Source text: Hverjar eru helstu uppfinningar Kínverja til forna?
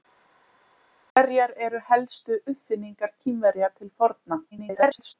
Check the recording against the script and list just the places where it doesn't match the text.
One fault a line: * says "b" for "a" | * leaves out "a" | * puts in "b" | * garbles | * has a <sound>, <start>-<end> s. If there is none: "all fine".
* garbles